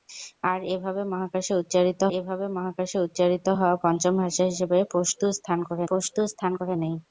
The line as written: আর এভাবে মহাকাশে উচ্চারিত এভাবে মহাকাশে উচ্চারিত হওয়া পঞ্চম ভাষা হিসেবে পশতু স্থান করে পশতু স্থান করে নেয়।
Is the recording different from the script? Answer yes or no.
no